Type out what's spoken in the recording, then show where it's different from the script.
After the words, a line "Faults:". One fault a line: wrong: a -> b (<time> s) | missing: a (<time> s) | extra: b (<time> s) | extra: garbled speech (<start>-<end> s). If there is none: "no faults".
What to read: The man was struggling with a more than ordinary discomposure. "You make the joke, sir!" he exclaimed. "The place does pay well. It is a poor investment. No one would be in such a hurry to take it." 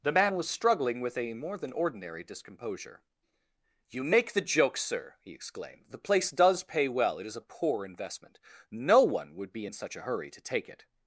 The man was struggling with a more than ordinary discomposure. "You make the joke, sir!" he exclaimed. "The place does pay well. It is a poor investment. No one would be in such a hurry to take it."
Faults:
no faults